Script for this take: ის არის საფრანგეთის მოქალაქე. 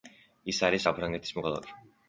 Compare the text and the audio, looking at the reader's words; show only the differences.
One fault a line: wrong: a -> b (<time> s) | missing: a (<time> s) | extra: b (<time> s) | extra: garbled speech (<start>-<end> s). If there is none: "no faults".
no faults